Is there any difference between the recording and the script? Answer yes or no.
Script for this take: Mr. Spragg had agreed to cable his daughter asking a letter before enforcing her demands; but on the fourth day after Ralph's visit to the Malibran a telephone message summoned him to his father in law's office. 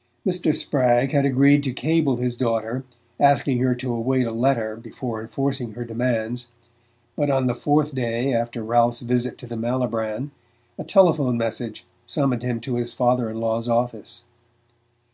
yes